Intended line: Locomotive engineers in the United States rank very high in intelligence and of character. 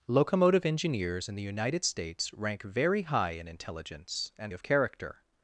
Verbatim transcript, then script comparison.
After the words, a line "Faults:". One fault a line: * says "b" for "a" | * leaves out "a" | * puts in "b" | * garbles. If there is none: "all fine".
Locomotive engineers in the United States rank very high in intelligence and of character.
Faults:
all fine